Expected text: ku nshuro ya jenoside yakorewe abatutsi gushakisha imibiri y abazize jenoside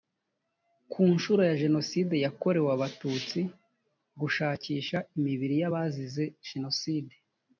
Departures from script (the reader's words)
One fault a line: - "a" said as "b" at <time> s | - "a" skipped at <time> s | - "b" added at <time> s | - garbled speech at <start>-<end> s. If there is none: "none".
none